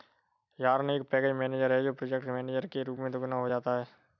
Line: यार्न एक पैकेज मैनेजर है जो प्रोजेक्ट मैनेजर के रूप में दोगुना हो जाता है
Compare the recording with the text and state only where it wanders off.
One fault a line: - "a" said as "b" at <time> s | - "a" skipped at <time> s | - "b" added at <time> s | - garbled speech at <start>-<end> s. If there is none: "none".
none